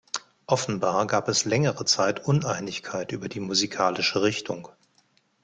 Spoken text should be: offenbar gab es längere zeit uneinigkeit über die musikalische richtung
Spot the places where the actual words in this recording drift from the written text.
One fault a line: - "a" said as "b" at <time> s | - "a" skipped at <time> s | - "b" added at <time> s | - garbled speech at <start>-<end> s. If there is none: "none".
none